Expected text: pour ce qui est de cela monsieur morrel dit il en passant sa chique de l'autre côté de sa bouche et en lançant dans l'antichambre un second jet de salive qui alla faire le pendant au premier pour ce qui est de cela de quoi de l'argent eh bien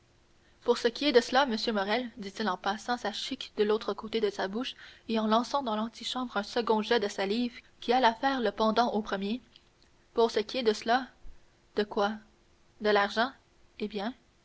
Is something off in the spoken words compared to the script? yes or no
no